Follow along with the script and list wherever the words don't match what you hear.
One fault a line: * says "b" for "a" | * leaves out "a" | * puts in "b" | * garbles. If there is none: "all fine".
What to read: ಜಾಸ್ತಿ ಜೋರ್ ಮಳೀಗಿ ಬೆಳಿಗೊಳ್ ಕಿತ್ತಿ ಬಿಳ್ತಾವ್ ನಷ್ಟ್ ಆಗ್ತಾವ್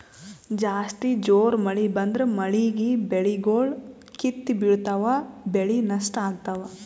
* puts in "ಮಳಿ ಬಂದ್ರ"
* puts in "ಬೆಳಿ"